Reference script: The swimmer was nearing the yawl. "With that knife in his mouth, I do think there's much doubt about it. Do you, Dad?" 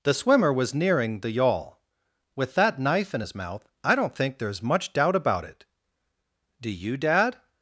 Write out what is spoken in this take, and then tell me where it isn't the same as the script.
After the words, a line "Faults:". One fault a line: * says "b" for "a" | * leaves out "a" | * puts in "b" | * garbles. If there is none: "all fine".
The swimmer was nearing the yawl. "With that knife in his mouth, I don't think there's much doubt about it. Do you, Dad?"
Faults:
* says "don't" for "do"